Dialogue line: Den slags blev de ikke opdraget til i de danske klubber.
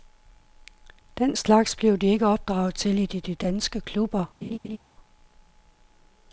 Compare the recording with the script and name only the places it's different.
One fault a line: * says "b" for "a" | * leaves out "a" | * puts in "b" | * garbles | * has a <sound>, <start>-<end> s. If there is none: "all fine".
* puts in "de"
* has a laugh, 4.4-4.8 s